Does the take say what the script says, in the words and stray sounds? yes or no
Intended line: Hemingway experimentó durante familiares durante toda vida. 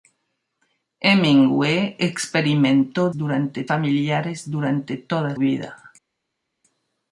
yes